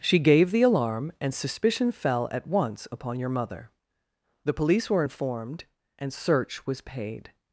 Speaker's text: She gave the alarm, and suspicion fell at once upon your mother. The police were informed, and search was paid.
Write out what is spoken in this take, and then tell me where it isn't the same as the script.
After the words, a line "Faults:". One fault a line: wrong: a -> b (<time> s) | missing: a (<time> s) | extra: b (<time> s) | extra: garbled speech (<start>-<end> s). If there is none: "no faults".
She gave the alarm, and suspicion fell at once upon your mother. The police were informed, and search was paid.
Faults:
no faults